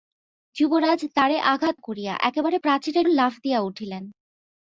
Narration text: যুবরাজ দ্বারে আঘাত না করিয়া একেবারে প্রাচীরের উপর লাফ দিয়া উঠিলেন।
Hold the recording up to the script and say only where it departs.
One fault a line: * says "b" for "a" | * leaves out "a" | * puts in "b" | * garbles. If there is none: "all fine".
* leaves out "না"
* leaves out "উপর"